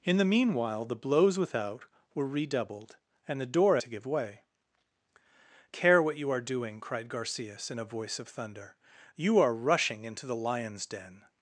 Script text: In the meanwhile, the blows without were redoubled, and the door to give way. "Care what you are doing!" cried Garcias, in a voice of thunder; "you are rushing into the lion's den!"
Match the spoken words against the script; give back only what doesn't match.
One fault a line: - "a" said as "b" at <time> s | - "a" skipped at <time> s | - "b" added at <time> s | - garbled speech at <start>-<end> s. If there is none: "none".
none